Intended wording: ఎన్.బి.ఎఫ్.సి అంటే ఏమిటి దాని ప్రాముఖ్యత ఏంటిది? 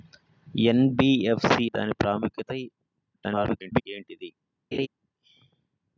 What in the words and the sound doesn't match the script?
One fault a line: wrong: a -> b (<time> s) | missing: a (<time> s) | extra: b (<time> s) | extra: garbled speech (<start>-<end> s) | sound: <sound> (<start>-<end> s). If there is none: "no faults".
missing: అంటే ఏమిటి (1.6 s)
extra: garbled speech (3.1-3.8 s)
sound: laugh (4.7-4.9 s)